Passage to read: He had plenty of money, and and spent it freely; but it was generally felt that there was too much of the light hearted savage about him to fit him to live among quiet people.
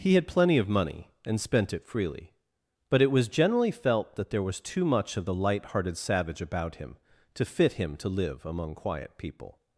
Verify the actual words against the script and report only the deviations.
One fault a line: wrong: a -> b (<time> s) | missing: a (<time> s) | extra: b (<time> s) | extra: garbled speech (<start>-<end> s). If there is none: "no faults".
missing: and (1.4 s)